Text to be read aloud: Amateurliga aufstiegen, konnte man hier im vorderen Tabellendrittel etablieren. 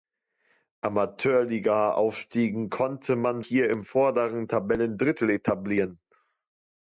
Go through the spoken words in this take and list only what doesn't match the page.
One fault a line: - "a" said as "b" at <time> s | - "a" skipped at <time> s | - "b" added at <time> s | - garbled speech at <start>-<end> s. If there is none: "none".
none